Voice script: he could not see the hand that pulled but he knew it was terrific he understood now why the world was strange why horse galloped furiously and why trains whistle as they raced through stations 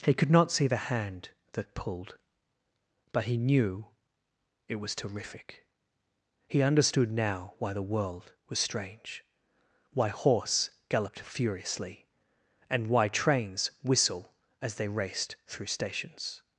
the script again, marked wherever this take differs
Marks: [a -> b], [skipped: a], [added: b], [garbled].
he could not see the hand that pulled but he knew it was terrific he understood now why the world was strange why horse galloped furiously and why trains whistle as they raced through stations